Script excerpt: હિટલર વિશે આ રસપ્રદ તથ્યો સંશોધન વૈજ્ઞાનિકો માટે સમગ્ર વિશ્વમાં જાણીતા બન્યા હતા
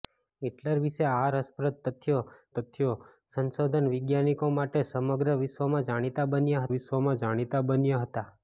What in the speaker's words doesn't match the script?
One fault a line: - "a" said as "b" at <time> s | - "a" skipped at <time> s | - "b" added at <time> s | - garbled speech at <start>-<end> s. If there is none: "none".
- "તથ્યો" added at 2.6 s
- "વિશ્વમાં જાણીતા બન્યા" added at 6.7 s